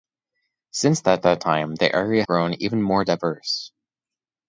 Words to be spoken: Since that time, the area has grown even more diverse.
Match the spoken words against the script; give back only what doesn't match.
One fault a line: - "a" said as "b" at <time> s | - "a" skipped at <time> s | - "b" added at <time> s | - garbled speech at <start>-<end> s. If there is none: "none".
- "that" added at 1.2 s
- "has" skipped at 2.3 s